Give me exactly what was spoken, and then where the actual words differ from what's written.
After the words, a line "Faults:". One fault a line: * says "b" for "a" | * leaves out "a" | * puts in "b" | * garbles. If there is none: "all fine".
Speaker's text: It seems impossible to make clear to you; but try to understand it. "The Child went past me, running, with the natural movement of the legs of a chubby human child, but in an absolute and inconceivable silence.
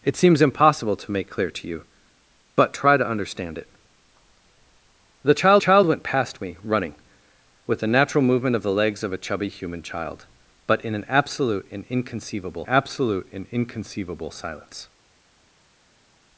It seems impossible to make clear to you; but try to understand it. "The Child Child went past me, running, with the natural movement of the legs of a chubby human child, but in an absolute and inconceivable absolute and inconceivable silence.
Faults:
* puts in "Child"
* puts in "absolute and inconceivable"